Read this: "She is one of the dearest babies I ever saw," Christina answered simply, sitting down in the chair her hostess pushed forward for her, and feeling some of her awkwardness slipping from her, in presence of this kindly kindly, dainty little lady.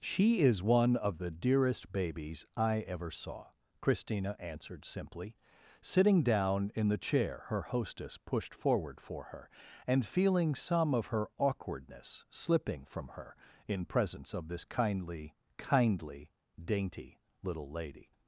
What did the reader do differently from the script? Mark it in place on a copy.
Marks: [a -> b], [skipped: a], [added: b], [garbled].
"She is one of the dearest babies I ever saw," Christina answered simply, sitting down in the chair her hostess pushed forward for her, and feeling some of her awkwardness slipping from her, in presence of this kindly kindly, dainty little lady.